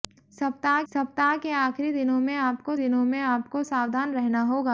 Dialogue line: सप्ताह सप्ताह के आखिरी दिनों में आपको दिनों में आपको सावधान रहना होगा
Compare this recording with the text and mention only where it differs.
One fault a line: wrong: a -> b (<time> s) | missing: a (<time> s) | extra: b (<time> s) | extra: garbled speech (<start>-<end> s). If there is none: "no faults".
no faults